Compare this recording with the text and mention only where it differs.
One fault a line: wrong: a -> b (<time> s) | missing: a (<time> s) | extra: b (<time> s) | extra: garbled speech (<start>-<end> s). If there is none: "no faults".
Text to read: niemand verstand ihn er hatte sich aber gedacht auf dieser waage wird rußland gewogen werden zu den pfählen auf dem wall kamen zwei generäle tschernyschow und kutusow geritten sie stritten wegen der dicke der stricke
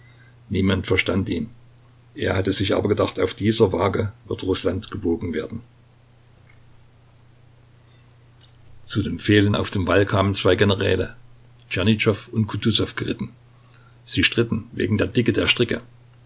no faults